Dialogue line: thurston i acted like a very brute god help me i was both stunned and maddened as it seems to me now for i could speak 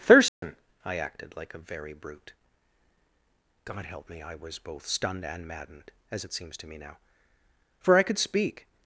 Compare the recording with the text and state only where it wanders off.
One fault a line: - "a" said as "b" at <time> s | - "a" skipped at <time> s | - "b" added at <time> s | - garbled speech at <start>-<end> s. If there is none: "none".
none